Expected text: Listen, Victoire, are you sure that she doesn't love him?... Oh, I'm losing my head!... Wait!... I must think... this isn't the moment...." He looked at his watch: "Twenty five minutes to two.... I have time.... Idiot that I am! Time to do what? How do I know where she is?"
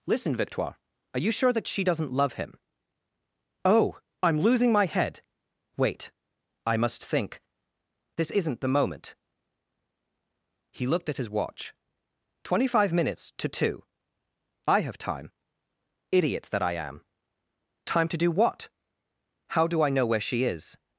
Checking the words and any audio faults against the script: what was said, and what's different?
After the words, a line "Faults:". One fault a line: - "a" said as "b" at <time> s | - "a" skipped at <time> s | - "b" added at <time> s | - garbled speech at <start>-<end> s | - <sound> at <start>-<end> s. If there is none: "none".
Listen, Victoire, are you sure that she doesn't love him?... Oh, I'm losing my head!... Wait!... I must think... this isn't the moment...." He looked at his watch: "Twenty five minutes to two.... I have time.... Idiot that I am! Time to do what? How do I know where she is?"
Faults:
none